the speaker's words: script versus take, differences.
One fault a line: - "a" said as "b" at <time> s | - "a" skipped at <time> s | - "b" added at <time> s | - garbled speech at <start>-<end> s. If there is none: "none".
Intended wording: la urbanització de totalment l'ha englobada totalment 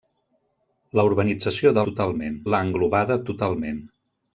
none